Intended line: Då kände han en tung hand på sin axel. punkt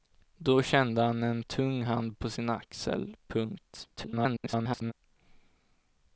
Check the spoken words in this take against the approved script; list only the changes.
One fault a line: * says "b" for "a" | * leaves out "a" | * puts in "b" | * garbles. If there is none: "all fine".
* garbles